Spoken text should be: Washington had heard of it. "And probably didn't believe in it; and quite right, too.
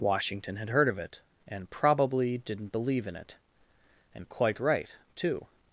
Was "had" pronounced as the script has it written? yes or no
yes